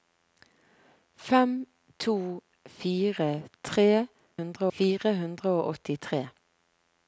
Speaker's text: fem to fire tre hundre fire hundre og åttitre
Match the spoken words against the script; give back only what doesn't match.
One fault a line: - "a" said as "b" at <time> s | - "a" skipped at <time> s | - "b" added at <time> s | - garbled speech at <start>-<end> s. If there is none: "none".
none